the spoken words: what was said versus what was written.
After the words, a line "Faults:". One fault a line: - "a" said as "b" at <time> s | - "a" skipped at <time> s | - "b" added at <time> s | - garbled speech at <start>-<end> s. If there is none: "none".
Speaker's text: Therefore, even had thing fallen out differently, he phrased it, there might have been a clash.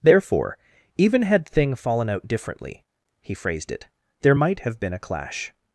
Therefore, even had thing fallen out differently, he phrased it, there might have been a clash.
Faults:
none